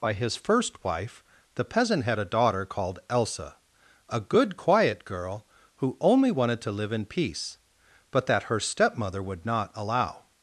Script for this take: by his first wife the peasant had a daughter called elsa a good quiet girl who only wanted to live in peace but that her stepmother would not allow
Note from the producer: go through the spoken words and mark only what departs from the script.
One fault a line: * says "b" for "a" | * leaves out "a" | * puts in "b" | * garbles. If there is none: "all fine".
all fine